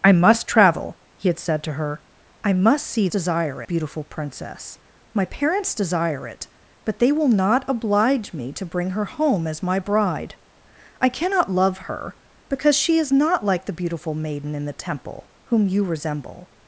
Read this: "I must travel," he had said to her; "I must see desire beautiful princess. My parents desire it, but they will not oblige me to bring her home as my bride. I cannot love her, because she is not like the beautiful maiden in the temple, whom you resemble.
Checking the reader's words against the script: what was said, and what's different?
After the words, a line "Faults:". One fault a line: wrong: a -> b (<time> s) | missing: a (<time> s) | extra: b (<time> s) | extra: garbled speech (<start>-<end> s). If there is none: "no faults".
"I must travel," he had said to her; "I must see desire beautiful princess. My parents desire it, but they will not oblige me to bring her home as my bride. I cannot love her, because she is not like the beautiful maiden in the temple, whom you resemble.
Faults:
no faults